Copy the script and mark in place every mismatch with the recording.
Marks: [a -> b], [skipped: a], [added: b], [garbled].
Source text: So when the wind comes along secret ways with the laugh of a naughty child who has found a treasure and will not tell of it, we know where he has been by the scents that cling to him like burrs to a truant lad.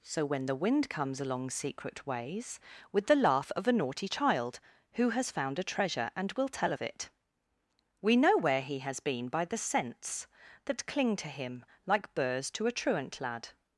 So when the wind comes along secret ways with the laugh of a naughty child who has found a treasure and will [skipped: not] tell of it, we know where he has been by the scents that cling to him like burrs to a truant lad.